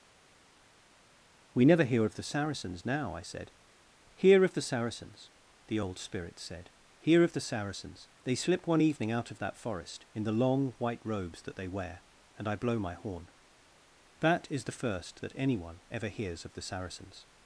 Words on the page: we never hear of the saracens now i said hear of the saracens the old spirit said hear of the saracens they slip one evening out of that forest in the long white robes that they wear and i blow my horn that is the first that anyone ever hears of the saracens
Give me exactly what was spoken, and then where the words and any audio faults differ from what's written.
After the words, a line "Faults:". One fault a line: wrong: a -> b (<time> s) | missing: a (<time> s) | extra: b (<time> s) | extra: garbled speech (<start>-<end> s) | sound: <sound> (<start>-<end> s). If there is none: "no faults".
we never hear of the saracens now i said hear of the saracens the old spirit said hear of the saracens they slip one evening out of that forest in the long white robes that they wear and i blow my horn that is the first that anyone ever hears of the saracens
Faults:
no faults